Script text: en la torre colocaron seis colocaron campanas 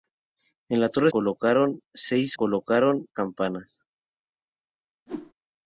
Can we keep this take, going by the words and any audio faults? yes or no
no